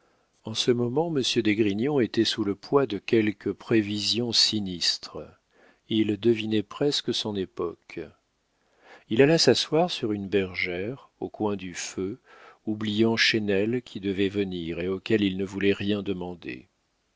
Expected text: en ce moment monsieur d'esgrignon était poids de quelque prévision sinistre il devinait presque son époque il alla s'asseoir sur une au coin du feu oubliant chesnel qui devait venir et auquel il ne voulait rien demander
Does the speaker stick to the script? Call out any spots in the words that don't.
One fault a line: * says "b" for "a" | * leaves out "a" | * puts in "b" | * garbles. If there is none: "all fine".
* puts in "sous le"
* puts in "bergère"